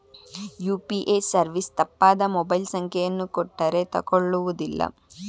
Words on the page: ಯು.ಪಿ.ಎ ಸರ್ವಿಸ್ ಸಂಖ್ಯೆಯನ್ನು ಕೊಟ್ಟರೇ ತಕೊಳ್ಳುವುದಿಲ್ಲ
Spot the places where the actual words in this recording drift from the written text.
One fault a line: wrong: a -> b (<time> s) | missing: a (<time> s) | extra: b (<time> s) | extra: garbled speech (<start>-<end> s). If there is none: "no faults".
extra: ತಪ್ಪಾದ ಮೊಬೈಲ್ (1.8 s)